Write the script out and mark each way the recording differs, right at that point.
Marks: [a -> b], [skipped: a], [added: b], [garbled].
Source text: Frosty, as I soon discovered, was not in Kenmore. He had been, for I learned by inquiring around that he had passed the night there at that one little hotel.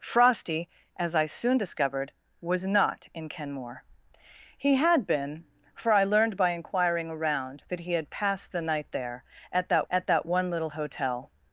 Frosty, as I soon discovered, was not in Kenmore. He had been, for I learned by inquiring around that he had passed the night there at that [added: at that] one little hotel.